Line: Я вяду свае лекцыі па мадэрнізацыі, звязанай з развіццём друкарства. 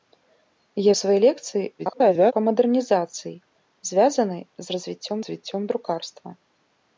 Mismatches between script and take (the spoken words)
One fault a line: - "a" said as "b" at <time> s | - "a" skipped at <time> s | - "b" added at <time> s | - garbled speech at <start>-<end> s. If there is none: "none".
- "вяду" skipped at 0.9 s
- garbled speech at 1.8-2.3 s
- "развіццём" added at 5.2 s